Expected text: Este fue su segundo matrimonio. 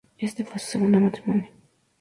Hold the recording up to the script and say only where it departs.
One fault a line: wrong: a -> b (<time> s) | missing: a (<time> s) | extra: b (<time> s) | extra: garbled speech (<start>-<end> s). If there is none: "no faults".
no faults